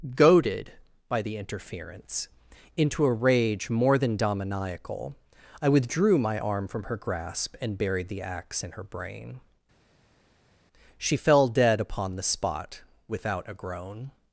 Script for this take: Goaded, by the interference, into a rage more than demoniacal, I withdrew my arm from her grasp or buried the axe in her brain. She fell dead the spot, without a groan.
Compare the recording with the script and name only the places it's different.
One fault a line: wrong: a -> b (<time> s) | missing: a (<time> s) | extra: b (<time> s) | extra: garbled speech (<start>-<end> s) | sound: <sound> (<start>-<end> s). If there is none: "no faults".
wrong: or -> and (7.6 s)
extra: upon (11.8 s)